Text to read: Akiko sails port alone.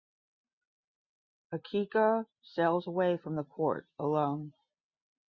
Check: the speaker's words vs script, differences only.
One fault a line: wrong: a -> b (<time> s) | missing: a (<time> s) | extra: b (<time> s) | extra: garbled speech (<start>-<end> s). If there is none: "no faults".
extra: away from the (2.9 s)